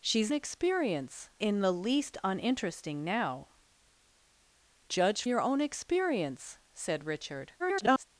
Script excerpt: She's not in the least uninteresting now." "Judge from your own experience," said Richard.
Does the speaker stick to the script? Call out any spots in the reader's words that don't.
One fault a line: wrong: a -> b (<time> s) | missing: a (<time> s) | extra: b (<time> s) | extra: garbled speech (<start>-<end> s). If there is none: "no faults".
wrong: not -> experience (0.3 s)
missing: from (5.2 s)
extra: garbled speech (7.6-8.0 s)